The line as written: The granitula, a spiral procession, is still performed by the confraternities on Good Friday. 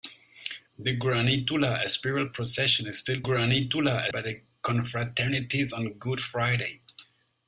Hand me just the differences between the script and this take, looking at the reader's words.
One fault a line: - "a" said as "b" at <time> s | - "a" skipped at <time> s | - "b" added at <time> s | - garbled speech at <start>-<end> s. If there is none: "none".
- "performed" said as "granitula" at 3.2 s